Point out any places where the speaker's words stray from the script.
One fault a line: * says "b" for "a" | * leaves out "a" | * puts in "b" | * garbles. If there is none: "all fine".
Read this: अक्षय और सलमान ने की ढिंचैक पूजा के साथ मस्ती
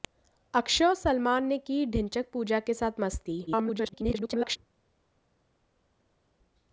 * garbles